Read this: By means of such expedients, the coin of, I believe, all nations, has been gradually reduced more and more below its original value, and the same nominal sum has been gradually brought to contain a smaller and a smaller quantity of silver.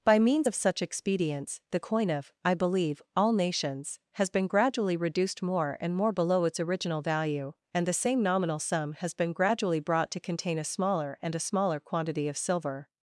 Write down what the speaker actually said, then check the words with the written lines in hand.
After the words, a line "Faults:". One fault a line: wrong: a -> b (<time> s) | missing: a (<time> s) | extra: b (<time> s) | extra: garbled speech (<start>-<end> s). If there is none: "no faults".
By means of such expedients, the coin of, I believe, all nations, has been gradually reduced more and more below its original value, and the same nominal sum has been gradually brought to contain a smaller and a smaller quantity of silver.
Faults:
no faults